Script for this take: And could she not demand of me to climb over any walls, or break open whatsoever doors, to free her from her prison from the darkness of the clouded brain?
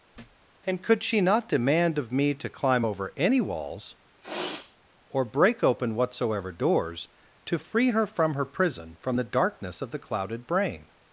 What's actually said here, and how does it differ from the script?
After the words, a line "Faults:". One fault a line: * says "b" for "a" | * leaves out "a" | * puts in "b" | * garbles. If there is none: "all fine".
And could she not demand of me to climb over any walls, or break open whatsoever doors, to free her from her prison from the darkness of the clouded brain?
Faults:
all fine